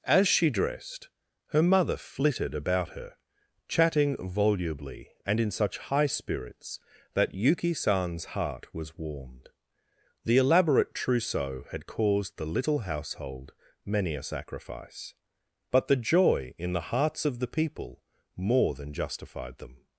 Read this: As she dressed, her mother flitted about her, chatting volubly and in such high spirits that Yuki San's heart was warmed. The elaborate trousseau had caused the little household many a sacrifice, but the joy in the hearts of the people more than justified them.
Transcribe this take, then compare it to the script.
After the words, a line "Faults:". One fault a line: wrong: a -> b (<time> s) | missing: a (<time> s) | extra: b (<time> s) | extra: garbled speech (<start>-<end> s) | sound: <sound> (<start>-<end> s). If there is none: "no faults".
As she dressed, her mother flitted about her, chatting volubly and in such high spirits that Yuki San's heart was warmed. The elaborate trousseau had caused the little household many a sacrifice, but the joy in the hearts of the people more than justified them.
Faults:
no faults